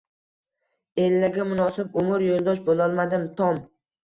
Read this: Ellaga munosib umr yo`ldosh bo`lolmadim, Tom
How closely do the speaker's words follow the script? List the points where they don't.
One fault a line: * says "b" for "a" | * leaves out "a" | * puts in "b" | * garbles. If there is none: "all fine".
all fine